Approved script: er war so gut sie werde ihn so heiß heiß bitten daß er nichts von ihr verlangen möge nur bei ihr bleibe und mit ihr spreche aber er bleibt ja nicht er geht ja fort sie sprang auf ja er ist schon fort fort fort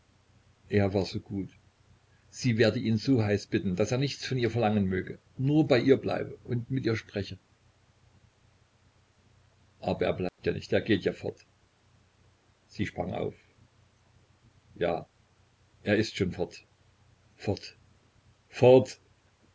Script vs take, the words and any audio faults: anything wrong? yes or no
yes